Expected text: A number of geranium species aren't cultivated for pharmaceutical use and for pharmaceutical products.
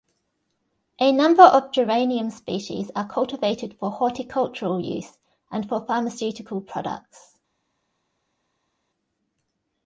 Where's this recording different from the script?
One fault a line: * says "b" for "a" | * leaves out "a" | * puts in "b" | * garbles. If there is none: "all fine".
* says "are" for "aren't"
* says "horticultural" for "pharmaceutical"